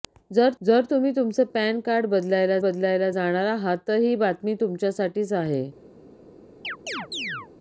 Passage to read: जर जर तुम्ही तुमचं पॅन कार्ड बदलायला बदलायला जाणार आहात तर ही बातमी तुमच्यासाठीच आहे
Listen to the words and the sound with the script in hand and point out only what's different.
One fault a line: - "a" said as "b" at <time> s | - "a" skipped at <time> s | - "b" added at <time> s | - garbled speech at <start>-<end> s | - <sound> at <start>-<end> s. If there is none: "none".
- chirp at 6.6-7.5 s